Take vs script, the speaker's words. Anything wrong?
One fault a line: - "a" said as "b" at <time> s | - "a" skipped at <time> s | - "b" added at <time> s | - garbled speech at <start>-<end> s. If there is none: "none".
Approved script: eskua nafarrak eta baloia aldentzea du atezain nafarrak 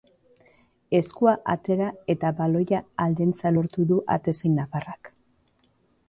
- "nafarrak" said as "atera" at 1.5 s
- "lortu" added at 3.5 s